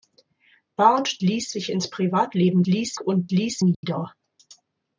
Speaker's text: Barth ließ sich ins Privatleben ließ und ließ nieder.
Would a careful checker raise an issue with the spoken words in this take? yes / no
no